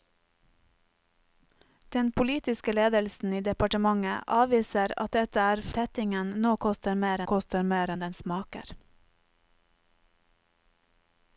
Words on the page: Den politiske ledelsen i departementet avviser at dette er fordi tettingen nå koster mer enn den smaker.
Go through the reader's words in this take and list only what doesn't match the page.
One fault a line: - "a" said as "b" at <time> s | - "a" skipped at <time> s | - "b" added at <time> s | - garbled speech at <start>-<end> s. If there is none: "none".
- "fordi" skipped at 5.6 s
- "koster mer" added at 7.3 s